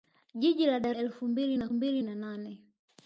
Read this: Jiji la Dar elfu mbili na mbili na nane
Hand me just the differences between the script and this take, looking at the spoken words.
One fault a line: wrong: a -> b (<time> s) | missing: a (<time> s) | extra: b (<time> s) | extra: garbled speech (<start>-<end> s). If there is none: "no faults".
no faults